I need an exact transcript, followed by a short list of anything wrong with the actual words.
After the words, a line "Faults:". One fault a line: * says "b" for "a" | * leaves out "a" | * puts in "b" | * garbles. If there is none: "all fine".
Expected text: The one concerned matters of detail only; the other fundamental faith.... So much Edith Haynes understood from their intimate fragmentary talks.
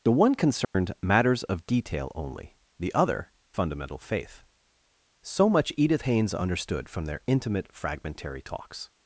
The one concerned matters of detail only; the other fundamental faith.... So much Edith Haynes understood from their intimate fragmentary talks.
Faults:
all fine